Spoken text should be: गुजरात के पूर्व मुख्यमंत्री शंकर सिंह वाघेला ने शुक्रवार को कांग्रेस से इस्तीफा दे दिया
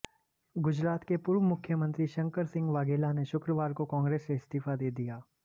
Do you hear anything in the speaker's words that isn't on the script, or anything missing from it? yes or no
no